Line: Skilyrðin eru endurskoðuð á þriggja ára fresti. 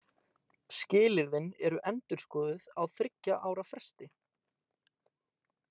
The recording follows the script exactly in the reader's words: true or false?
true